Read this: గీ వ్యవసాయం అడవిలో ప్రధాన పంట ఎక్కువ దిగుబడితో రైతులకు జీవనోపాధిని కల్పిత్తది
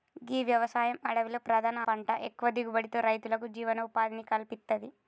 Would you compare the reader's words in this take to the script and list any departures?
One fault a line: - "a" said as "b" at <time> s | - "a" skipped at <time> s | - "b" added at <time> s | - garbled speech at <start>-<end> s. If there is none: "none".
none